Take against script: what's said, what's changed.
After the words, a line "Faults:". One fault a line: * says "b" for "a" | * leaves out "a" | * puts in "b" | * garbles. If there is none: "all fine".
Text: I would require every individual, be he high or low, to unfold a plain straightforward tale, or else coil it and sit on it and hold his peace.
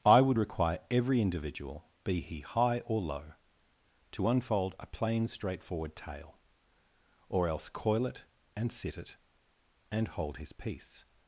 I would require every individual, be he high or low, to unfold a plain straightforward tale, or else coil it and sit it and hold his peace.
Faults:
* leaves out "on"